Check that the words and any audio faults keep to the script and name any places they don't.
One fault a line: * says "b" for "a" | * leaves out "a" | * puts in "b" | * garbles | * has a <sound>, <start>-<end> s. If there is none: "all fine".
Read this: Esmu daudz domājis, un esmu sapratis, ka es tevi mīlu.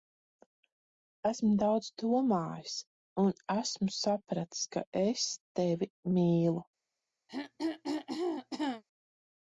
* has a throat clearing, 7.3-8.8 s